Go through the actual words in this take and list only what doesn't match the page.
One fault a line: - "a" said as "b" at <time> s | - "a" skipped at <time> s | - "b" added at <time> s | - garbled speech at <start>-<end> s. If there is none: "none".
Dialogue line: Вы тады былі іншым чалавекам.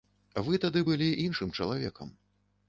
none